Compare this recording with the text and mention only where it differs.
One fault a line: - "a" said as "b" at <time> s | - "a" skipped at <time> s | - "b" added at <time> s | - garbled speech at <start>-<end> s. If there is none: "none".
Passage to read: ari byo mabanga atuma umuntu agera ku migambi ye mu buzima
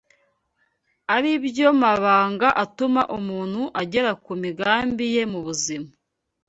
none